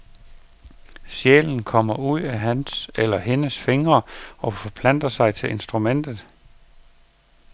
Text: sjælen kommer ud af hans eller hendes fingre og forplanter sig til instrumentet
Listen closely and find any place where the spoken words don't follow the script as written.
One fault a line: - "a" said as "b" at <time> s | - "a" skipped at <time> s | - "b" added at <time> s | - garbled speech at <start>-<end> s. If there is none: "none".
none